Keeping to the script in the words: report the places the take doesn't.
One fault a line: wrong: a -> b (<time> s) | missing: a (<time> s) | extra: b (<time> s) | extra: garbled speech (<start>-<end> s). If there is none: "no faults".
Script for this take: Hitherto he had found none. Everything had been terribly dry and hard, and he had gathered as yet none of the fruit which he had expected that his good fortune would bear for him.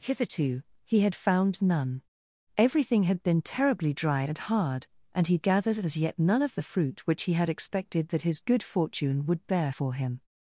missing: had (5.4 s)